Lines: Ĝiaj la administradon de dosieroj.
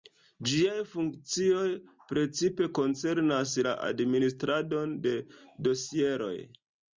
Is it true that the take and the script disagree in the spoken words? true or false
true